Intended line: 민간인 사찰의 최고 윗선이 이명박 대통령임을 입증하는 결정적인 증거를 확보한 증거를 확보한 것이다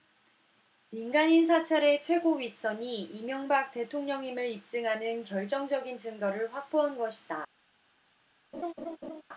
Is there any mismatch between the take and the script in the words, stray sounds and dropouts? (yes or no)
yes